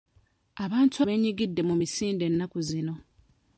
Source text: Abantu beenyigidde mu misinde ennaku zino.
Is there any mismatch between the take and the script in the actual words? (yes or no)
no